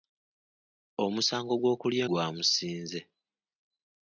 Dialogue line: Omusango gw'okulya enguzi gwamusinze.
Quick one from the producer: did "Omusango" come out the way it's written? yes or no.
yes